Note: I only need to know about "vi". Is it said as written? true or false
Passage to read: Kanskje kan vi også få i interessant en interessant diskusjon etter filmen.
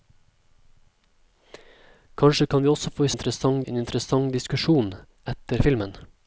true